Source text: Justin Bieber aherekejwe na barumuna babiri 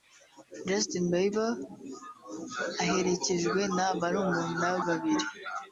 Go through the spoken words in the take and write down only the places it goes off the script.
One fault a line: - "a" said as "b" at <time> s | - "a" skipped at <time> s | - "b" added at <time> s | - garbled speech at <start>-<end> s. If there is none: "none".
none